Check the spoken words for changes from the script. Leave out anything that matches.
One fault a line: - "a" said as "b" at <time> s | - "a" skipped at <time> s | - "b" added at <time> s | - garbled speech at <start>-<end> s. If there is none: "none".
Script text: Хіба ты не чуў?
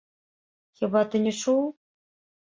none